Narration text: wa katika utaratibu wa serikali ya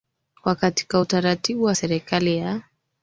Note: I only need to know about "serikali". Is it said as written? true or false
true